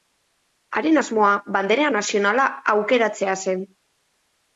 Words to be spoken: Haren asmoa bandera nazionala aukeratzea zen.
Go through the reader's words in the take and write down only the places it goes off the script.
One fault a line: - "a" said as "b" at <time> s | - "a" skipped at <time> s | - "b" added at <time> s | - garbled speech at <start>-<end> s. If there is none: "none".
none